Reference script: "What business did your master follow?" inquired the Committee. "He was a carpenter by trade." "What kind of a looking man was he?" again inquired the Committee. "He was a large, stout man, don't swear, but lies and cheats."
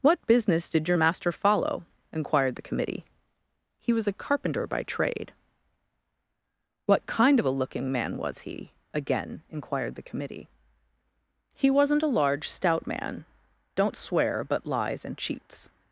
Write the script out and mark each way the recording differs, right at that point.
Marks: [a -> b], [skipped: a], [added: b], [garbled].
"What business did your master follow?" inquired the Committee. "He was a carpenter by trade." "What kind of a looking man was he?" again inquired the Committee. "He [was -> wasn't] a large, stout man, don't swear, but lies and cheats."